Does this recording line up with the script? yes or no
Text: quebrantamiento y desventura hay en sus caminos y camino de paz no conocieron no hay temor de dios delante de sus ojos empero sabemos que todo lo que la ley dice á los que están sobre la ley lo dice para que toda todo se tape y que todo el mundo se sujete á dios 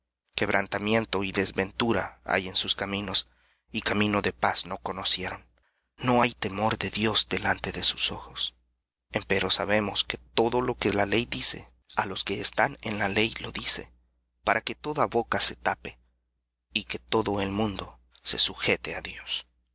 no